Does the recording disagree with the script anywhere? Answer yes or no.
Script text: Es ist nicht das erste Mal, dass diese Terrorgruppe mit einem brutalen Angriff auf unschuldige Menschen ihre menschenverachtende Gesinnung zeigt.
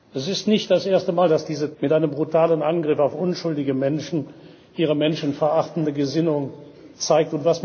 yes